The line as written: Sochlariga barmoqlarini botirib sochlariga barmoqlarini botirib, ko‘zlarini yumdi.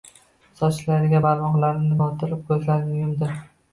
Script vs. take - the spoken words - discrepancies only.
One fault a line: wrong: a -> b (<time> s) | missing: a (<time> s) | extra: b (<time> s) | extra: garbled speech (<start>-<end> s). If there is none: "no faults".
missing: sochlariga barmoqlarini botirib (2.4 s)